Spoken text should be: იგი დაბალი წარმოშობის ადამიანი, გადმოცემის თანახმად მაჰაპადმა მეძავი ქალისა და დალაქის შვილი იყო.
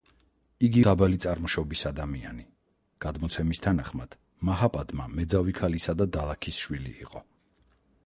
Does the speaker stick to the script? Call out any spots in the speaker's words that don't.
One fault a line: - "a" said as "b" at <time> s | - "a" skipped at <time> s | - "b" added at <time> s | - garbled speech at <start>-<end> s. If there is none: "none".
none